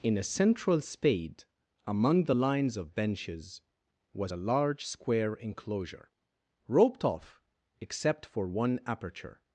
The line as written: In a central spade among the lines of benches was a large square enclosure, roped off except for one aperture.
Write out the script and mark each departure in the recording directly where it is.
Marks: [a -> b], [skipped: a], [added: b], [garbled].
In a central spade among the lines of benches was a large square enclosure, roped off except for one aperture.